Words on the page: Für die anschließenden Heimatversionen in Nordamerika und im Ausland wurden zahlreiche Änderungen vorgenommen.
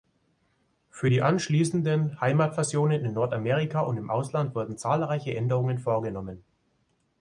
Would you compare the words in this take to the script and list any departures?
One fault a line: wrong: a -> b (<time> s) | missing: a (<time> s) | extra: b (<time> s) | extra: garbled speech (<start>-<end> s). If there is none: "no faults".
no faults